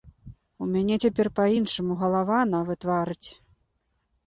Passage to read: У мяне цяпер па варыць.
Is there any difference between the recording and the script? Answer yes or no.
yes